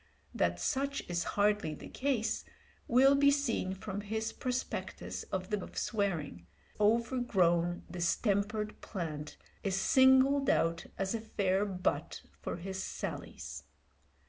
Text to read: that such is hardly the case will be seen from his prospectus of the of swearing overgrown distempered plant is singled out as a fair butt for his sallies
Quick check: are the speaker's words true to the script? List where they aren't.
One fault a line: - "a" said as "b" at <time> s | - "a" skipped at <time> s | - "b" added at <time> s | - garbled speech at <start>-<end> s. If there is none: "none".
none